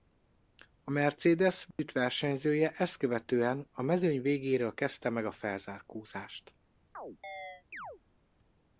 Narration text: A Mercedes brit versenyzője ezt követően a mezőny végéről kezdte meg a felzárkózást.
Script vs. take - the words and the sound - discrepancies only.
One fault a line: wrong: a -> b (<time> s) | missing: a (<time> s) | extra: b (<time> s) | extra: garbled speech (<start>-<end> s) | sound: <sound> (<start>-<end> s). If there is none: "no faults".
sound: dropout (1.7-1.8 s)
sound: chirp (6.9-8.0 s)